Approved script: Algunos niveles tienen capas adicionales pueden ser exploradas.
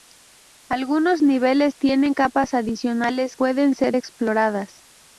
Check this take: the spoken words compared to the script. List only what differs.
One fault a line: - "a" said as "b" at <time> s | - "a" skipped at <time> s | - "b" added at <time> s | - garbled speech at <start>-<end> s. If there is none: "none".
none